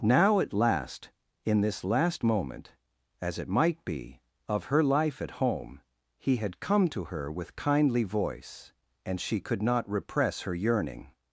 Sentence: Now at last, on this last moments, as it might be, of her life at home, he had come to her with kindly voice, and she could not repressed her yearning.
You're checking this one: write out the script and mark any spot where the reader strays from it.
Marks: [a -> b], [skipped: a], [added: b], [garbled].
Now at last, [on -> in] this last [moments, -> moment] as it might be, of her life at home, he had come to her with kindly voice, and she could not [repressed -> repress] her yearning.